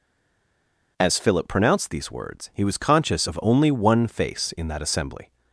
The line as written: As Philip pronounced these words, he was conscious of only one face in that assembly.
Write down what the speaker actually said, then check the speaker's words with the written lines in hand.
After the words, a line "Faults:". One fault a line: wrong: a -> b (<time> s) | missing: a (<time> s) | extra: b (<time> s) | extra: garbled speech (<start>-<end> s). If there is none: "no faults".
As Philip pronounced these words, he was conscious of only one face in that assembly.
Faults:
no faults